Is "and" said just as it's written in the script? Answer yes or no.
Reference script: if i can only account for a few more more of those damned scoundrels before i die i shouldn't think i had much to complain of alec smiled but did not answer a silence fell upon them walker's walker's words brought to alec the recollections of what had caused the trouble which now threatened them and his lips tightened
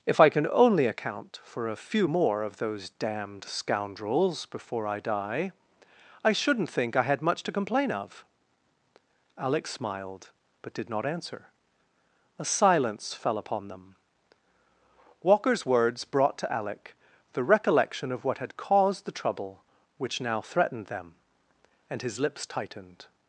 yes